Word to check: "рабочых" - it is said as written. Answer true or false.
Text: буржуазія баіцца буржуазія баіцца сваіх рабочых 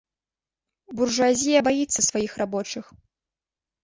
true